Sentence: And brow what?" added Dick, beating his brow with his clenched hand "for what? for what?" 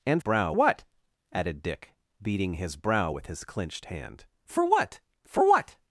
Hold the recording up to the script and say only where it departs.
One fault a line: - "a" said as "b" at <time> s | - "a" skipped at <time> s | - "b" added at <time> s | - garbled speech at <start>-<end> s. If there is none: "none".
none